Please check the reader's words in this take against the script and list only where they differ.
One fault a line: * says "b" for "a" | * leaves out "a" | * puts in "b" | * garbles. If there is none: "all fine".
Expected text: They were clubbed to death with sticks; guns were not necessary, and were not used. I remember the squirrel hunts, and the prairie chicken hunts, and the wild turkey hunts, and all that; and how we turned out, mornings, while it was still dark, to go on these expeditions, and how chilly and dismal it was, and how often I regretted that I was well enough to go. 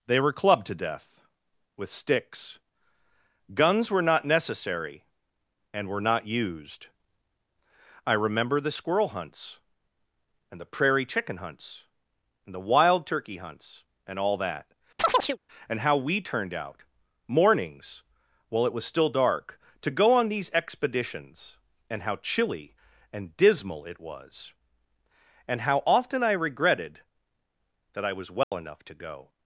all fine